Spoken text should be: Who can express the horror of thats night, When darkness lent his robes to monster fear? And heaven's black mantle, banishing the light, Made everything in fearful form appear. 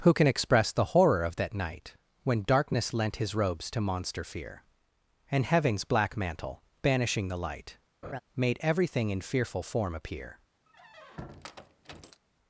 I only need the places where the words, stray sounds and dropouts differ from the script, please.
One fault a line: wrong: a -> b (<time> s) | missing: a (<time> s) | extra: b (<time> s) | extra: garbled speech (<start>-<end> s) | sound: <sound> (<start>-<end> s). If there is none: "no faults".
wrong: thats -> that (1.4 s)
sound: laugh (8.0-8.2 s)
sound: squeak (10.7-12.2 s)